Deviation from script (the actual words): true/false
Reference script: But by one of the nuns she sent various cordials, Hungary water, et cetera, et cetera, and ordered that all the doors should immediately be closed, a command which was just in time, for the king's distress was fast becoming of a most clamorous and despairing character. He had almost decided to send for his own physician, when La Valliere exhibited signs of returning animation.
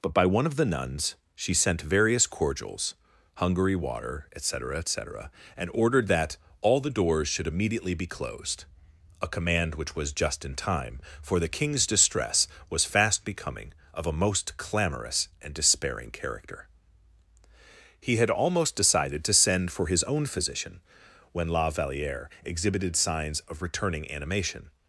false